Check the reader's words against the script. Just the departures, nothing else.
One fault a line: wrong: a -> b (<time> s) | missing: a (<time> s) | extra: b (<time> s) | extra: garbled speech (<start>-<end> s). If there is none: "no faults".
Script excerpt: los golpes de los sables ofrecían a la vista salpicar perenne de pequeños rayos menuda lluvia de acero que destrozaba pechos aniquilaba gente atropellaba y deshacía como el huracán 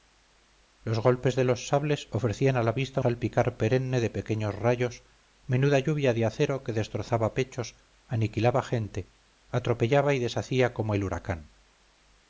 no faults